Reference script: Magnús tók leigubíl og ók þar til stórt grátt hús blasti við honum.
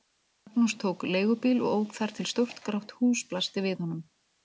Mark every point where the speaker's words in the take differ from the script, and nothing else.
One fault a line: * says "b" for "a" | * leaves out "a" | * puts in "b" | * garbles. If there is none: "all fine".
all fine